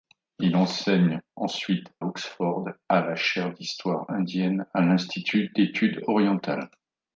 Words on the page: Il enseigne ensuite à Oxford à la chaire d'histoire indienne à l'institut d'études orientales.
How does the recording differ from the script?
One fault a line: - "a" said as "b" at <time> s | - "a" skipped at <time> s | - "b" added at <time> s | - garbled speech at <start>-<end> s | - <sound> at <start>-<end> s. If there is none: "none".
- "à" skipped at 1.9 s